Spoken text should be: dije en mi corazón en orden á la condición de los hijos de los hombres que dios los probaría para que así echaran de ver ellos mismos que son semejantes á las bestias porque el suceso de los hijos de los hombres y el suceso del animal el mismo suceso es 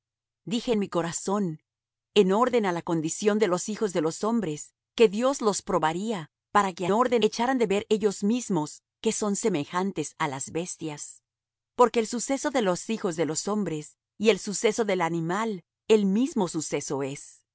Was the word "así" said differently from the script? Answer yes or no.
yes